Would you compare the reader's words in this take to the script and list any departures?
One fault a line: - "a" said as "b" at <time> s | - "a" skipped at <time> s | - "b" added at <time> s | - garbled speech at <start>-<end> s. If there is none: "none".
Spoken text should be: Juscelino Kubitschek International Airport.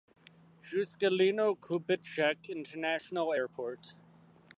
none